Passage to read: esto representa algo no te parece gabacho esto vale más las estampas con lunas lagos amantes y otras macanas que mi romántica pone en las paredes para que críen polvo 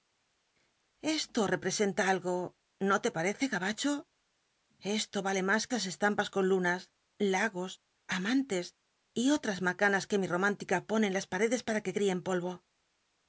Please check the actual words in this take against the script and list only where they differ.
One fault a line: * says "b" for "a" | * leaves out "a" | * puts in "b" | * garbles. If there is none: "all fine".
all fine